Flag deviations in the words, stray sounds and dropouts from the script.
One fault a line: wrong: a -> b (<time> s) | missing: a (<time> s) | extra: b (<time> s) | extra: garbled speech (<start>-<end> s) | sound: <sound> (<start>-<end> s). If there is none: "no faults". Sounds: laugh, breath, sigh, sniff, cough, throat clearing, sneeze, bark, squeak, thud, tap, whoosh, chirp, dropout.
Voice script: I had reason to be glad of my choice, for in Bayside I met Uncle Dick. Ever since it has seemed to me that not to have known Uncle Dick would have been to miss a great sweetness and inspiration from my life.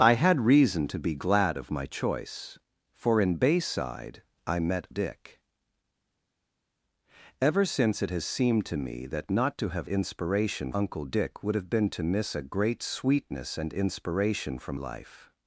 missing: Uncle (4.9 s)
wrong: known -> inspiration (9.9 s)
missing: my (14.8 s)